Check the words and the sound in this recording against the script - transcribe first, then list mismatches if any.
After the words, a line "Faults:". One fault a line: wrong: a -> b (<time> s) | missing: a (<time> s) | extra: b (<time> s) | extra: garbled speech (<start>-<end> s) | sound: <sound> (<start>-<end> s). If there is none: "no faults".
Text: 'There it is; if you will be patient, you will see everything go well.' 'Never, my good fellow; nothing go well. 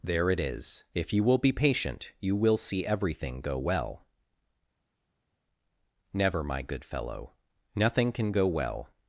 'There it is; if you will be patient, you will see everything go well.' 'Never, my good fellow; nothing can go well.
Faults:
extra: can (8.1 s)